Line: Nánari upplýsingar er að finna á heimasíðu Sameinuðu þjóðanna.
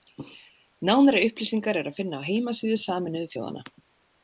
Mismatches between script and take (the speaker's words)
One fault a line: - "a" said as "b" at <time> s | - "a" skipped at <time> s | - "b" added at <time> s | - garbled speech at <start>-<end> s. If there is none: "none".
none